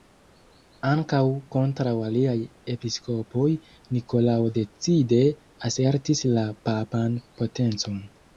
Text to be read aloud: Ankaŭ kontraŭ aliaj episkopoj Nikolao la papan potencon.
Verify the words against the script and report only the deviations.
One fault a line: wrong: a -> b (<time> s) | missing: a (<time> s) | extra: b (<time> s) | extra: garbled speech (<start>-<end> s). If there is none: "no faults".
extra: decide asertis (4.6 s)